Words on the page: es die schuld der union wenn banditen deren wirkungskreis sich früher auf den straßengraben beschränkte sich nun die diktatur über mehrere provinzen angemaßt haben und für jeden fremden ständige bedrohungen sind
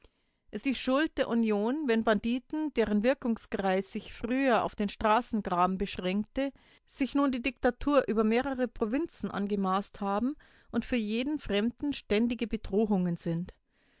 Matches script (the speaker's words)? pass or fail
pass